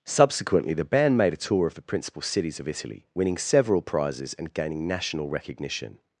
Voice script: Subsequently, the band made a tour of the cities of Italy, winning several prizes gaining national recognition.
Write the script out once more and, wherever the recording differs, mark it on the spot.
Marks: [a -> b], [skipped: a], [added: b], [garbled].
Subsequently, the band made a tour of the [added: principal] cities of Italy, winning several prizes [added: and] gaining national recognition.